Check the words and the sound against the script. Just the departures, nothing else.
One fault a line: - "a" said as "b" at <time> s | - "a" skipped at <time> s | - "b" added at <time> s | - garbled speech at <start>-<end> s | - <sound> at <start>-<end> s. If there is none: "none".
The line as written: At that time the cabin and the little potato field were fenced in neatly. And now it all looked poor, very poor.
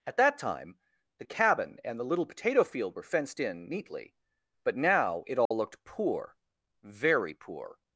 - "And" said as "But" at 4.6 s
- dropout at 5.5-5.5 s